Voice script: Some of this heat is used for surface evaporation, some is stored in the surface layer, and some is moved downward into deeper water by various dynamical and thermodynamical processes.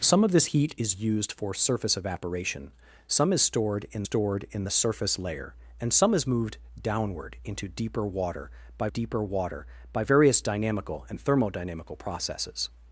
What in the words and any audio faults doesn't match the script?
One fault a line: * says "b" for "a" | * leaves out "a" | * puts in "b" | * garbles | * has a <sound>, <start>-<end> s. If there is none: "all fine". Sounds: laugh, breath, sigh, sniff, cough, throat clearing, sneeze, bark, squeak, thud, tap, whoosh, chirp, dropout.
* puts in "stored in"
* puts in "deeper water by"